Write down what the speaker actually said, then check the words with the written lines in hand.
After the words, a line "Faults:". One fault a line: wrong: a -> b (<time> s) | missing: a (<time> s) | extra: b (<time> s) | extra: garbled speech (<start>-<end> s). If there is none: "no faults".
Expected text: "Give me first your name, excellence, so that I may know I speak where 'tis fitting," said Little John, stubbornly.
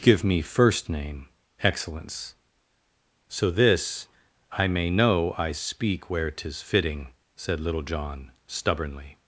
"Give me first name, excellence, so this I may know I speak where 'tis fitting," said Little John, stubbornly.
Faults:
missing: your (0.9 s)
wrong: that -> this (3.5 s)